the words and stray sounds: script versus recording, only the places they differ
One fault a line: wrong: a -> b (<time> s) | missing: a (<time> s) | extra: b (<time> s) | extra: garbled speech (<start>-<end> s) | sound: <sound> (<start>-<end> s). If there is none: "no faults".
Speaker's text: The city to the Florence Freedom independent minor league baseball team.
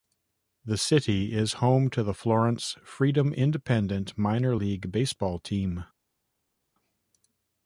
extra: is home (1.3 s)